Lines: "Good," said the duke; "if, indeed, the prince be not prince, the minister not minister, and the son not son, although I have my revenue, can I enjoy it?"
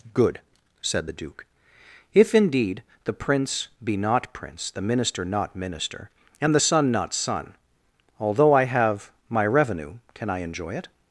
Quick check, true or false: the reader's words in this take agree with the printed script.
true